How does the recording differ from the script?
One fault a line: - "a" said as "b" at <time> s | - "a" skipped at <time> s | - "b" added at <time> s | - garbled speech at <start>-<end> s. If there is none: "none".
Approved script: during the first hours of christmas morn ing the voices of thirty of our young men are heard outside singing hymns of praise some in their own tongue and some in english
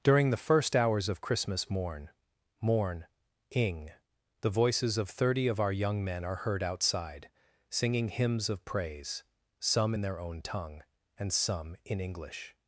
- "morn" added at 2.6 s